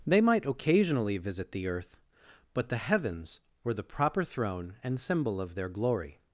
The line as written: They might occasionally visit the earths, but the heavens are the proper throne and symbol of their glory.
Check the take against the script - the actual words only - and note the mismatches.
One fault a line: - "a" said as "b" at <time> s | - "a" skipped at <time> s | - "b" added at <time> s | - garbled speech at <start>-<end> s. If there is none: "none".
- "earths" said as "earth" at 1.7 s
- "are" said as "were" at 3.6 s